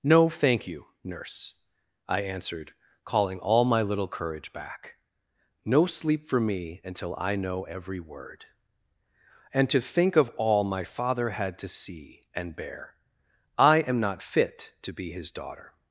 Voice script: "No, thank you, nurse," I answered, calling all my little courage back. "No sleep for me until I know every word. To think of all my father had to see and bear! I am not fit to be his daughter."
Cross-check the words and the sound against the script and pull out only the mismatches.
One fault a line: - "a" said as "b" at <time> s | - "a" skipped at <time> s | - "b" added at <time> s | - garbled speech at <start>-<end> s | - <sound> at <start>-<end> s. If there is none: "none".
- "And" added at 9.5 s